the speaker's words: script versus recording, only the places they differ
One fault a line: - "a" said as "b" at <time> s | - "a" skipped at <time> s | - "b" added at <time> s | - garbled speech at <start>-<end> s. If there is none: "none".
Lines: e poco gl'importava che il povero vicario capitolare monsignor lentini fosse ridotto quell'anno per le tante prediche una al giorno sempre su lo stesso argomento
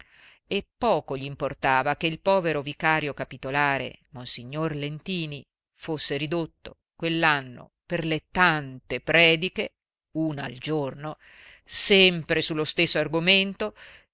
none